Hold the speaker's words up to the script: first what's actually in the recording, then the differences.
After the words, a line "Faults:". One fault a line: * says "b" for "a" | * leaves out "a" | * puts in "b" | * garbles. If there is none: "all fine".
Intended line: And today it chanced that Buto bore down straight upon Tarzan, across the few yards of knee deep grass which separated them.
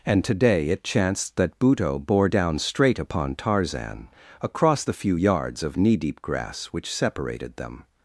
And today it chanced that Buto bore down straight upon Tarzan, across the few yards of knee deep grass which separated them.
Faults:
all fine